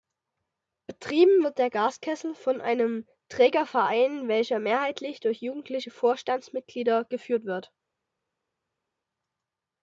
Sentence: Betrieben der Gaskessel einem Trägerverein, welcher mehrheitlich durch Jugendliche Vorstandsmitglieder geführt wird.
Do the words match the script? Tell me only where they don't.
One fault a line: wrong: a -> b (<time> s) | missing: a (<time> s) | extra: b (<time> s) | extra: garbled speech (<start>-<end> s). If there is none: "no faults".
extra: wird (1.4 s)
extra: von (2.3 s)